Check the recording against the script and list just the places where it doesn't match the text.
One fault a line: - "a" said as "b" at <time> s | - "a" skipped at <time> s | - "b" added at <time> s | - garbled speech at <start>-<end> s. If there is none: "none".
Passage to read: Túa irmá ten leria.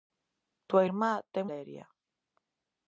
none